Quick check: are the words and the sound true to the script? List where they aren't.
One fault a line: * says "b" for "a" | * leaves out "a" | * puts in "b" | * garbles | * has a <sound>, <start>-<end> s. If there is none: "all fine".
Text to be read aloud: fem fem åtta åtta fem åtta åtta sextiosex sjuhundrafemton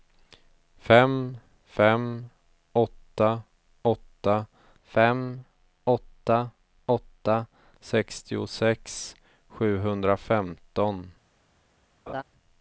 * has a laugh, 12.1-12.2 s